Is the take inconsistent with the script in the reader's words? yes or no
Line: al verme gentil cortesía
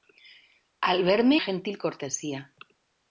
no